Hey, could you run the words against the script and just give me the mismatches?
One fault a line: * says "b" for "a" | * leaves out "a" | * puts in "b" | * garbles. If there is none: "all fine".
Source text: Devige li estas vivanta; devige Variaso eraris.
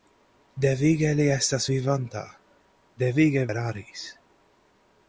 * leaves out "Variaso"